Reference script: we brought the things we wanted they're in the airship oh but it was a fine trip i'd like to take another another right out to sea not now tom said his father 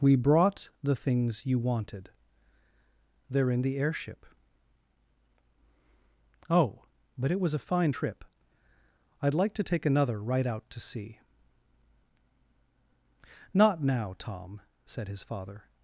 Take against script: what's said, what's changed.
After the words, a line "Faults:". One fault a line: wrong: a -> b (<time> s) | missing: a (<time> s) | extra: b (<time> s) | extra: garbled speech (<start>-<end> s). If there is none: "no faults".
we brought the things you wanted they're in the airship oh but it was a fine trip i'd like to take another right out to sea not now tom said his father
Faults:
wrong: we -> you (1.4 s)
missing: another (10.2 s)